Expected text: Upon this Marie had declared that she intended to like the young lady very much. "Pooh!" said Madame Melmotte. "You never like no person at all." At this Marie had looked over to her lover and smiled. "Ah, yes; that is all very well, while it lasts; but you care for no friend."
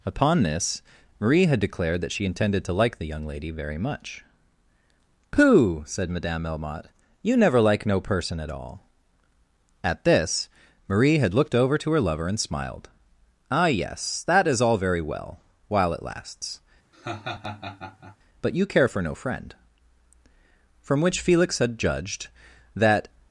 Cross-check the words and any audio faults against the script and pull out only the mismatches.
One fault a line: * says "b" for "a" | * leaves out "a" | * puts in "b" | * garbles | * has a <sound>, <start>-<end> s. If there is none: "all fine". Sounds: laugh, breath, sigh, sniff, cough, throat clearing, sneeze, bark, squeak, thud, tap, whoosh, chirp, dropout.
* has a laugh, 16.9-18.2 s
* puts in "From which Felix had judged that"